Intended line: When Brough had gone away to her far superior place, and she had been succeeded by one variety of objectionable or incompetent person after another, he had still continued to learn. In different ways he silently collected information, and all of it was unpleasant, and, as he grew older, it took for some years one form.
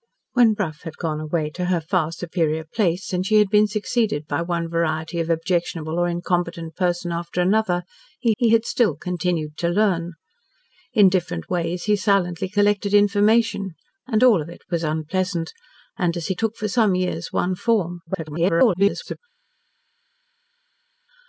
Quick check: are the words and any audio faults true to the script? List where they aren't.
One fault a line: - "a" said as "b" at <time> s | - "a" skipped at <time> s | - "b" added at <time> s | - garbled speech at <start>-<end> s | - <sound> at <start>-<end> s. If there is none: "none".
- "he" added at 8.4 s
- "grew older it" skipped at 16.3 s
- garbled speech at 18.1-19.2 s